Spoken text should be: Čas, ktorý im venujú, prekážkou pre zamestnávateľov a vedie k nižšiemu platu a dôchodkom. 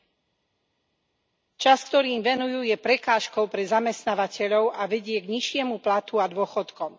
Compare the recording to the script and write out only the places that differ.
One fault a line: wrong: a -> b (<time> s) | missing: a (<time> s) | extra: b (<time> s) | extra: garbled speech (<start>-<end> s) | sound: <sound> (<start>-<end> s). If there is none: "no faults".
extra: je (2.6 s)